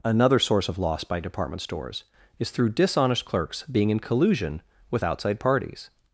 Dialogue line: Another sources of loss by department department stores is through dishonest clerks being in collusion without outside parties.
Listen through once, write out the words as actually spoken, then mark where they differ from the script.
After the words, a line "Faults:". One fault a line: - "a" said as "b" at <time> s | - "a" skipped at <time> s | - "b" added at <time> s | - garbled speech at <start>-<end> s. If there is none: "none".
Another source of loss by department stores is through dishonest clerks being in collusion with outside parties.
Faults:
- "sources" said as "source" at 0.4 s
- "department" skipped at 1.6 s
- "without" said as "with" at 4.9 s